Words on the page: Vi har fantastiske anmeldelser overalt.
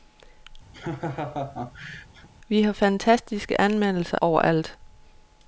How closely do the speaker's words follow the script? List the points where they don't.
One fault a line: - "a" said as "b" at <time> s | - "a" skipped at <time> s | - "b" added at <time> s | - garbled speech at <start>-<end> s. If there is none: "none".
none